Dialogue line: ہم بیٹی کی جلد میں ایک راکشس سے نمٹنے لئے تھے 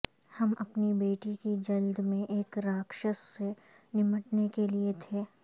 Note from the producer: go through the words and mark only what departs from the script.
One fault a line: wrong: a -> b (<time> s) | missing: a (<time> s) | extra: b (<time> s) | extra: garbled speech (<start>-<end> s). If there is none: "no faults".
extra: اپنی (0.6 s)
extra: کے (4.5 s)